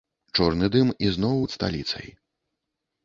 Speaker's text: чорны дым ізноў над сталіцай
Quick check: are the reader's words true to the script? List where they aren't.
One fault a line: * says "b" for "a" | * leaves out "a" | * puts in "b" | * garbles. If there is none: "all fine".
all fine